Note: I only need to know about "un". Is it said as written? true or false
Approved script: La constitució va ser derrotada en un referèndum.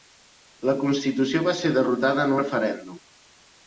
false